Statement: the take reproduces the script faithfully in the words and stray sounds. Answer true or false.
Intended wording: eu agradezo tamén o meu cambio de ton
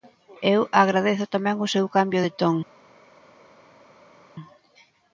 false